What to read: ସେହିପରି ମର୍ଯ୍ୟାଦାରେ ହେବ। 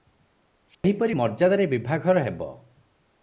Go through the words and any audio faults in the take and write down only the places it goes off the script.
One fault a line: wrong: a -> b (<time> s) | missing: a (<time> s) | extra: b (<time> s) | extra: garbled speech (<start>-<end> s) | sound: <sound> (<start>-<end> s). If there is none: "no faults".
sound: dropout (0.7-0.8 s)
extra: ବିଭାଘର (1.7 s)